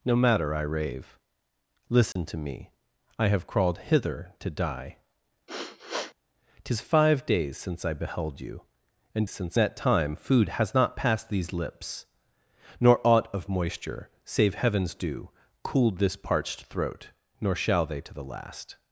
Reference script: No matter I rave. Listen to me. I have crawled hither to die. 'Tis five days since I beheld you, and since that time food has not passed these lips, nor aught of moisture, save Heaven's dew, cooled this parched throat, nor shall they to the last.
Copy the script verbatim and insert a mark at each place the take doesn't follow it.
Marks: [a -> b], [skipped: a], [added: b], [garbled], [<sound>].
No matter I rave. Listen [dropout] to me. I have crawled hither to die. [sniff] 'Tis five days since I beheld you, and since that time food has not passed these lips, nor aught of moisture, save Heaven's dew, cooled this parched throat, nor shall they to the last.